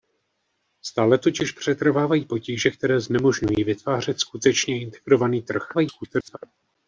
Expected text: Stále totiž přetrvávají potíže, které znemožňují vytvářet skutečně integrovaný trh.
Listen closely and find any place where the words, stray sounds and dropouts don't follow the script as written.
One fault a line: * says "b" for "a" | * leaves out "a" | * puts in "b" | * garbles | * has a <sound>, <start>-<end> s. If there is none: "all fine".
* garbles